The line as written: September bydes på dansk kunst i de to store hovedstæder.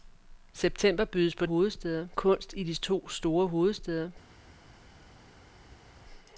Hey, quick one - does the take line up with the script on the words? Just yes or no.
no